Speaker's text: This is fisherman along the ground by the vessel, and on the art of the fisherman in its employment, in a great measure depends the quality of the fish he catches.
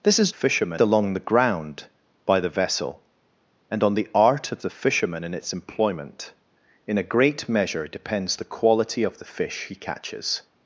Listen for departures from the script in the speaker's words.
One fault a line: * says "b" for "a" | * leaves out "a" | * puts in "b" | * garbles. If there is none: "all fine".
all fine